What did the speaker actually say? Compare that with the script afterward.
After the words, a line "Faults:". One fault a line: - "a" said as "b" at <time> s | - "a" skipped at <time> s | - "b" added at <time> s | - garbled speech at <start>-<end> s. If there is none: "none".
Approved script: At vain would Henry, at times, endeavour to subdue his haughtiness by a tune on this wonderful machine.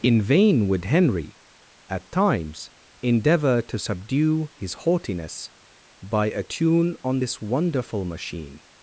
In vain would Henry, at times, endeavour to subdue his haughtiness by a tune on this wonderful machine.
Faults:
- "At" said as "In" at 0.0 s